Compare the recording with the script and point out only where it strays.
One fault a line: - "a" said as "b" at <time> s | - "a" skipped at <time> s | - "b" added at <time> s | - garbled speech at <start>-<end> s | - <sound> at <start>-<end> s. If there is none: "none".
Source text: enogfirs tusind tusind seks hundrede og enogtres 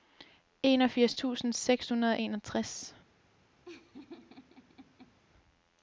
- "tusind" skipped at 1.5 s
- laugh at 3.6-5.2 s